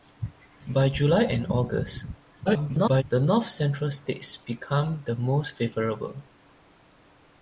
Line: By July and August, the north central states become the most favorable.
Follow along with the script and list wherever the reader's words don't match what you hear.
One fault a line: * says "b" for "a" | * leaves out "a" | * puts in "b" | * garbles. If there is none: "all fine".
* garbles